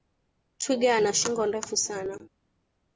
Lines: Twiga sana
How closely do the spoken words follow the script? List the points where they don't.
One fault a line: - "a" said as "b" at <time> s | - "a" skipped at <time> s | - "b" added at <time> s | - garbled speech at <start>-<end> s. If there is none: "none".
- "ana shingo ndefu" added at 0.9 s